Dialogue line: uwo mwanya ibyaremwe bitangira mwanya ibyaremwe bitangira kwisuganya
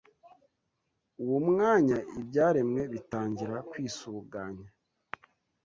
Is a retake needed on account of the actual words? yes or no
yes